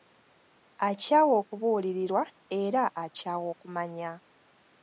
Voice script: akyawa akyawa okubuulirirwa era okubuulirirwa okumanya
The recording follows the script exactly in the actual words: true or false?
false